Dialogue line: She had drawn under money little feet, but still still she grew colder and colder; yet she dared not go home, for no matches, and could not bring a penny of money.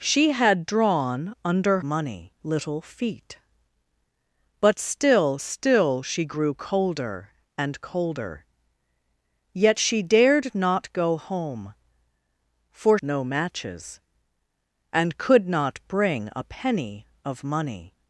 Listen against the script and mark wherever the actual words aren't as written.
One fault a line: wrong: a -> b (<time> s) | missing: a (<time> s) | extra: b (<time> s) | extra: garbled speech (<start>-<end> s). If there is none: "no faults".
no faults